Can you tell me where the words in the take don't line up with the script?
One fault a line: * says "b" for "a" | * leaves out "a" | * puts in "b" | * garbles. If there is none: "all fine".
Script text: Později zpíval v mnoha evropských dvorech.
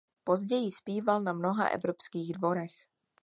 * says "na" for "v"